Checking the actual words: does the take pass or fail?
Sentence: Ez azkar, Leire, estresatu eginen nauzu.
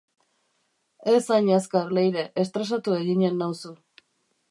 fail